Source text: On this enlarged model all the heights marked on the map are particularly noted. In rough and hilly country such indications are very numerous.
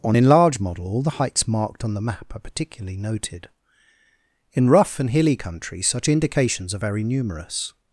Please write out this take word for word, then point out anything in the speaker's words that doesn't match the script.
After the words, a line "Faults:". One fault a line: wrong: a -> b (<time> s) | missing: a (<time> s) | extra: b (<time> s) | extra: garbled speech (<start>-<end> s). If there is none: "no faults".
On enlarged model all the heights marked on the map are particularly noted. In rough and hilly country such indications are very numerous.
Faults:
missing: this (0.2 s)